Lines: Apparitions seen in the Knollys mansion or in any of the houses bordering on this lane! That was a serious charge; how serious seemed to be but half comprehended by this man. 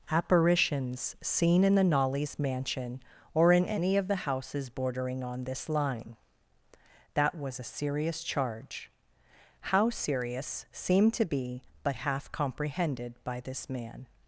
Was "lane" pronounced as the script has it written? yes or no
no